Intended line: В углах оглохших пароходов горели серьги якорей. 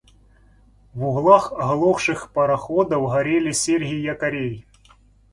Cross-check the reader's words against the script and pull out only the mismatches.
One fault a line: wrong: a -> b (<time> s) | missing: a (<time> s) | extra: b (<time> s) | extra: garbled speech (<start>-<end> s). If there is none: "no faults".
no faults